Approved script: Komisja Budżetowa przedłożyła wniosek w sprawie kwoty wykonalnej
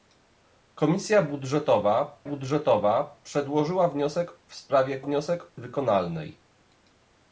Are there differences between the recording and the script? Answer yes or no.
yes